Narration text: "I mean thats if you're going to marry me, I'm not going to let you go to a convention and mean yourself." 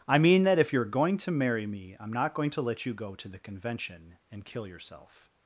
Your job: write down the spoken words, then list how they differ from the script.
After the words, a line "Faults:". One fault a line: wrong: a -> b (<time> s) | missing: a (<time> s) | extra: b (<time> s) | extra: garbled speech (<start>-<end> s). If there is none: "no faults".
"I mean that if you're going to marry me, I'm not going to let you go to the convention and kill yourself."
Faults:
wrong: thats -> that (0.4 s)
wrong: a -> the (3.3 s)
wrong: mean -> kill (4.5 s)